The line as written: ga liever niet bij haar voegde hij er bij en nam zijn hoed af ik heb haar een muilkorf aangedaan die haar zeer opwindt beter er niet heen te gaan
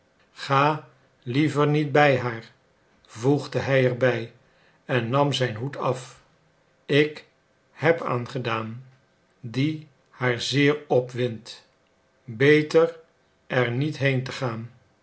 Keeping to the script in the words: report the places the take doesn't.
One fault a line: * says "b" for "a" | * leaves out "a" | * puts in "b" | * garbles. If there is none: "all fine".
* leaves out "haar een muilkorf"